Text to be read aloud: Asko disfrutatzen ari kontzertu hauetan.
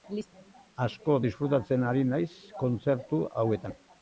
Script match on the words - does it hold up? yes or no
no